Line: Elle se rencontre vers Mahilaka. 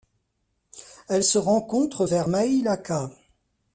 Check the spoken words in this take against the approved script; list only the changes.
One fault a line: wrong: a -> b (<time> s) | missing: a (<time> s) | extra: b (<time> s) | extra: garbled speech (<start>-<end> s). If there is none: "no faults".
no faults